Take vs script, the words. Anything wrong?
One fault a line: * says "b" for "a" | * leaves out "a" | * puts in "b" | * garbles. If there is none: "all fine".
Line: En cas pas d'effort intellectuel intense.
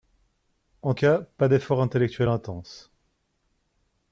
all fine